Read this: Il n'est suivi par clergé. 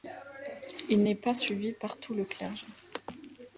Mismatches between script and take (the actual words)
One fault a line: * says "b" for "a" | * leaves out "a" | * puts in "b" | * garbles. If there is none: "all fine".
* puts in "pas"
* puts in "tout le"